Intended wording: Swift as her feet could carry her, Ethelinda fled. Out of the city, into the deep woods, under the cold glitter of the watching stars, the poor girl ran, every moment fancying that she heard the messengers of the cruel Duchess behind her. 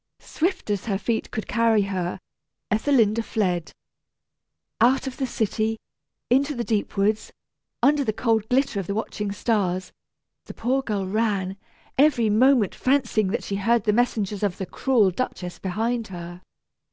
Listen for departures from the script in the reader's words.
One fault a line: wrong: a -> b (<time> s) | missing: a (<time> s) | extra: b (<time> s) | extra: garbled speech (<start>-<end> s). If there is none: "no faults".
no faults